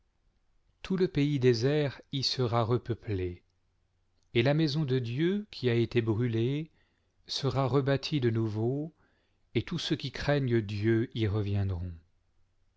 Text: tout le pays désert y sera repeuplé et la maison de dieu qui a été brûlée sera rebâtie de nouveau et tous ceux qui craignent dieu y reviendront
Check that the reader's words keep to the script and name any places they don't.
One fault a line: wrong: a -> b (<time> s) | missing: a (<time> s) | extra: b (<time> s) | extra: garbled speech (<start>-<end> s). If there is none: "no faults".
no faults